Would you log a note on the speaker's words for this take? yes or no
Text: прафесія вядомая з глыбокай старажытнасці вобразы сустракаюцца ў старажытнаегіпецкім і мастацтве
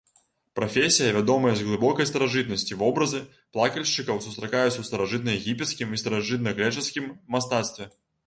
yes